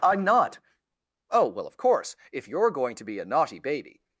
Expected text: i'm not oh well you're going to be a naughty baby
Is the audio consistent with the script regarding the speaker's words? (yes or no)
no